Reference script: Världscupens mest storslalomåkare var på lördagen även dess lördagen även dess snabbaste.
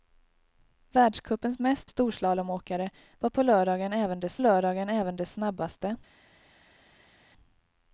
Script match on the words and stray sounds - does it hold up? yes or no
yes